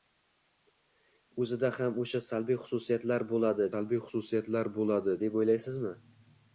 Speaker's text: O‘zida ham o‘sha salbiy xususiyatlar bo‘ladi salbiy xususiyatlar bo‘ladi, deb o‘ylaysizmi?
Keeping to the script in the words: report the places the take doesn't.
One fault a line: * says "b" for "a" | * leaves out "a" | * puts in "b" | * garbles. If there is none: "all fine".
all fine